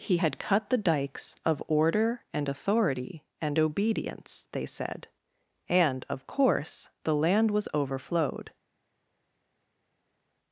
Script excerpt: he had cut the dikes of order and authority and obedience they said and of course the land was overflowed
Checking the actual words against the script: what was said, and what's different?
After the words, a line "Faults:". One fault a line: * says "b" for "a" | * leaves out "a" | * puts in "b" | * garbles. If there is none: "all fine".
he had cut the dikes of order and authority and obedience they said and of course the land was overflowed
Faults:
all fine